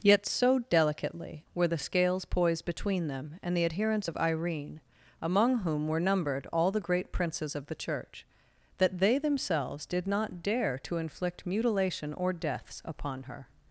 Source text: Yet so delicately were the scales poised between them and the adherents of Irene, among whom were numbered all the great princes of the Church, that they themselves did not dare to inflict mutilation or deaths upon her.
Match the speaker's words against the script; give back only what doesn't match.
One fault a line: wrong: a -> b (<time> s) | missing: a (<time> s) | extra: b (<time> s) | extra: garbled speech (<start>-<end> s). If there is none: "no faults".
no faults